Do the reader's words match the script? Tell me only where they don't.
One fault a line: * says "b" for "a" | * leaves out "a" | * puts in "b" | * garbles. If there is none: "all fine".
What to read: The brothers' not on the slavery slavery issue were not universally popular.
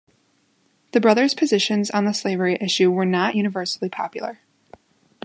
* says "positions" for "not"
* leaves out "slavery"